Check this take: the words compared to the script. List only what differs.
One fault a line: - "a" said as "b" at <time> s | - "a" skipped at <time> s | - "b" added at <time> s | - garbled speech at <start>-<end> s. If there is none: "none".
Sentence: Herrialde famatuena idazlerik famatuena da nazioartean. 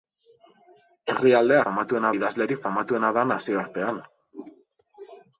none